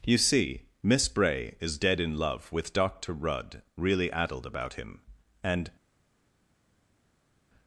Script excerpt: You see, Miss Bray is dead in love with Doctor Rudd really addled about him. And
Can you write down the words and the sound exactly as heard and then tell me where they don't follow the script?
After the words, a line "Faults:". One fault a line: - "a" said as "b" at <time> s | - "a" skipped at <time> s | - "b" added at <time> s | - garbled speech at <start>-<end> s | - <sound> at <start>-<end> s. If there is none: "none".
You see, Miss Bray is dead in love with Doctor Rudd really addled about him. And
Faults:
none